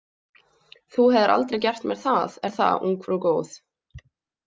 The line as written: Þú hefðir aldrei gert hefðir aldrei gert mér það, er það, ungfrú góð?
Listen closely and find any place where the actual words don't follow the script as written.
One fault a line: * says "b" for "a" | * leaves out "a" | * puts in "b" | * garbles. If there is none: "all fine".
* leaves out "hefðir aldrei gert"